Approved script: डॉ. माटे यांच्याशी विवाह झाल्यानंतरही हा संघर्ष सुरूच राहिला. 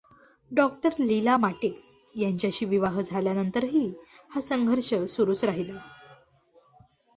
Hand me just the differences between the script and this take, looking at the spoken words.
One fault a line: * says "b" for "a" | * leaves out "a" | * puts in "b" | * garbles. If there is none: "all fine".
* puts in "लीला"